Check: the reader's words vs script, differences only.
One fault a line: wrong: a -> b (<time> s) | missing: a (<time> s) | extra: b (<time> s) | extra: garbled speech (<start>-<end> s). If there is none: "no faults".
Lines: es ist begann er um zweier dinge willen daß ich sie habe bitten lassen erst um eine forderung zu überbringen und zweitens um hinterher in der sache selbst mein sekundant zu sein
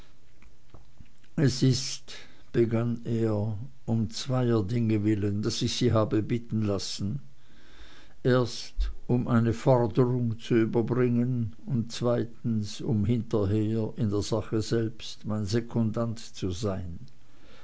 no faults